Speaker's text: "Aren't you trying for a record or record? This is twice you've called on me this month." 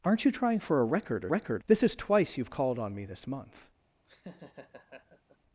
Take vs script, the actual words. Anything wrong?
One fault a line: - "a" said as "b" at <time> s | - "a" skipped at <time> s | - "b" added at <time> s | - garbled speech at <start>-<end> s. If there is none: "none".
none